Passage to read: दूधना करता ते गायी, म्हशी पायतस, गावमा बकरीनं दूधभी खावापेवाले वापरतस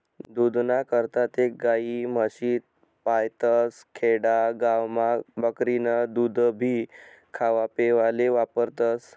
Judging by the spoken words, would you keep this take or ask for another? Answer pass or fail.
fail